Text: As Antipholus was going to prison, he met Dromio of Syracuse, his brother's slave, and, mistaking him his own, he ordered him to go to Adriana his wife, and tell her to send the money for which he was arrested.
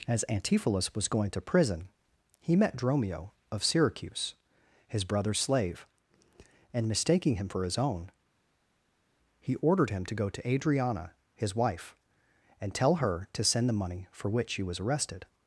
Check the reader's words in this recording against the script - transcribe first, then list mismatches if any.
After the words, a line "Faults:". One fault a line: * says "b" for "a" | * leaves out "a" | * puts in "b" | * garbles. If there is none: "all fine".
As Antipholus was going to prison, he met Dromio of Syracuse, his brother's slave, and, mistaking him for his own, he ordered him to go to Adriana his wife, and tell her to send the money for which he was arrested.
Faults:
* puts in "for"